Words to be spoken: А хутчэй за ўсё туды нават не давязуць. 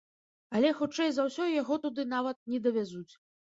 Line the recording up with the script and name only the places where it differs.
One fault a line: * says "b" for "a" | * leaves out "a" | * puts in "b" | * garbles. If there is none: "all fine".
* says "Але" for "А"
* puts in "яго"